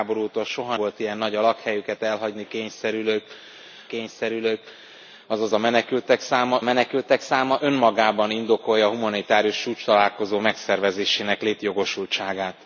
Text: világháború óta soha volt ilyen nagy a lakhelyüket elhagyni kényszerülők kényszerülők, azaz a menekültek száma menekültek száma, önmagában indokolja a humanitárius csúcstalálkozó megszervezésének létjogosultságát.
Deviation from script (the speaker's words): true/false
false